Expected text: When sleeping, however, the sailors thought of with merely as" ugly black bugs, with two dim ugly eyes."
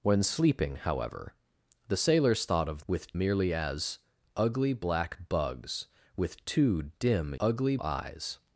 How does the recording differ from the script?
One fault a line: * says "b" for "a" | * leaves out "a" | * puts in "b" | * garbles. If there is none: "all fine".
all fine